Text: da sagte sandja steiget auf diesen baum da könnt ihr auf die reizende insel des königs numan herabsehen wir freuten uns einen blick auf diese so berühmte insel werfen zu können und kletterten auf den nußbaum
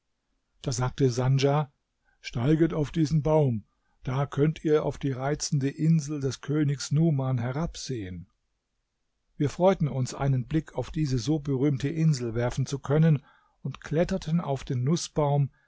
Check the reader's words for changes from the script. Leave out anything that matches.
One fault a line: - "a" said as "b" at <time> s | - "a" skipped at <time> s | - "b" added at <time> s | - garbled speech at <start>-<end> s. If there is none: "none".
none